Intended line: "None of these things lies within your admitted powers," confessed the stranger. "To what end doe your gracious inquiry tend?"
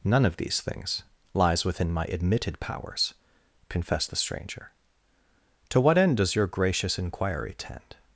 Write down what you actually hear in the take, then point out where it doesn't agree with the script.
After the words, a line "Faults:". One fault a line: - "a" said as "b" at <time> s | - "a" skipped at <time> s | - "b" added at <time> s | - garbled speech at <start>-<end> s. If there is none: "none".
"None of these things lies within my admitted powers," confessed the stranger. "To what end does your gracious inquiry tend?"
Faults:
- "your" said as "my" at 1.9 s
- "doe" said as "does" at 6.2 s